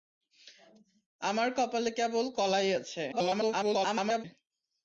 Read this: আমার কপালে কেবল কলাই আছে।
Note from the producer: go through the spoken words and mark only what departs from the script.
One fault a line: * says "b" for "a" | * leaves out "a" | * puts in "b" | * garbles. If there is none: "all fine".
* garbles